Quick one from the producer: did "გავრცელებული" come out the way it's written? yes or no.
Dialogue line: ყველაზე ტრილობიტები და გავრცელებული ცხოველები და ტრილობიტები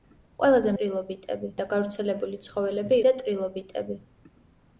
yes